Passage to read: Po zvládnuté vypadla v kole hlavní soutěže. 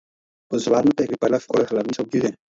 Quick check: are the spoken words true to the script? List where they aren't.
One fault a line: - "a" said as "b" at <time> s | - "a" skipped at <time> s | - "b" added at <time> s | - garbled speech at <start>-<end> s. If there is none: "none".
none